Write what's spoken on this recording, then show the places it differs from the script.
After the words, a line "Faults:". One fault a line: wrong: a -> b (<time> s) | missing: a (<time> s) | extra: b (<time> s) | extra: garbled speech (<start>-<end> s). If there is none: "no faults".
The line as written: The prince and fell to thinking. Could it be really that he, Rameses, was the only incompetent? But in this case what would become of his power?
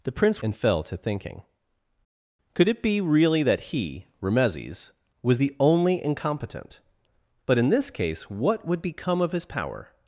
The prince and fell to thinking. Could it be really that he, Rameses, was the only incompetent? But in this case what would become of his power?
Faults:
no faults